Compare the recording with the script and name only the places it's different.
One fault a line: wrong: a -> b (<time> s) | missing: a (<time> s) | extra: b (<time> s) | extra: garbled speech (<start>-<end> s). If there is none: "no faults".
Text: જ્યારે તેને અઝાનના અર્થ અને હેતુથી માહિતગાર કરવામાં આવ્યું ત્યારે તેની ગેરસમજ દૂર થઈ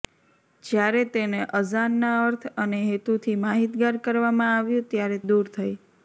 missing: તેની ગેરસમજ (5.2 s)